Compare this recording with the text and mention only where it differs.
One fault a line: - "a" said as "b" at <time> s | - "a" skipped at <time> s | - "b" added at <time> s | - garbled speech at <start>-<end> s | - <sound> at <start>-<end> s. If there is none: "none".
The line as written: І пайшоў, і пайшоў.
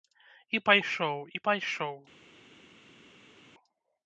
none